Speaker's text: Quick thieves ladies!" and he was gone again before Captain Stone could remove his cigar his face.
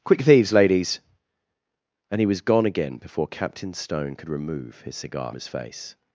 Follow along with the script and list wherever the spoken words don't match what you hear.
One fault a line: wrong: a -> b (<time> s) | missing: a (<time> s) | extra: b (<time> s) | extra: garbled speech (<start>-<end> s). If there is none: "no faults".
no faults